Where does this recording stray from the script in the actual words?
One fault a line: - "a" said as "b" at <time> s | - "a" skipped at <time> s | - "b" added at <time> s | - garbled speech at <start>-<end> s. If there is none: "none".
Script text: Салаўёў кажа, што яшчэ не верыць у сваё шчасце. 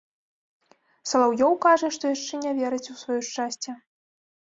none